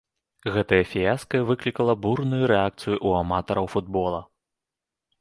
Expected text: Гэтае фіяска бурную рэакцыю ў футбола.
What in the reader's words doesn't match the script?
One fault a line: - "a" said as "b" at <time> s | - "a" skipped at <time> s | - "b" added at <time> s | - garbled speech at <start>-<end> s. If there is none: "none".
- "выклікала" added at 1.5 s
- "аматараў" added at 3.3 s